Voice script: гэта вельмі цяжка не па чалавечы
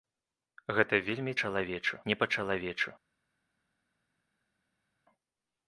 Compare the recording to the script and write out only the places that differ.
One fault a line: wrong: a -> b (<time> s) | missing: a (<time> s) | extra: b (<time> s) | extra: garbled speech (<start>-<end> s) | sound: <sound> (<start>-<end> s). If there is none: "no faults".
wrong: цяжка -> чалавечы (1.4 s)